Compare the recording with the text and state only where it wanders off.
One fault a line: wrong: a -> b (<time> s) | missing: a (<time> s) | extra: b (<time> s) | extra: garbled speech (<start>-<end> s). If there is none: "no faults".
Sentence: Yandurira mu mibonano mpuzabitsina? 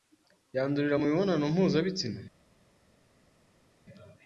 no faults